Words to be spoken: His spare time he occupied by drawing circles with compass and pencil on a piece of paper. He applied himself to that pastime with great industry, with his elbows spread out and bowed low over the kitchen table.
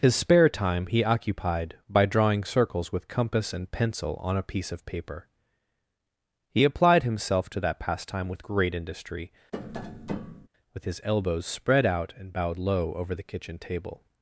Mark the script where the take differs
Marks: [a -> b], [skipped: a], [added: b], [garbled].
His spare time he occupied by drawing circles with compass and pencil on a piece of paper. He applied himself to that pastime with great industry, with his elbows spread out and bowed low over the kitchen table.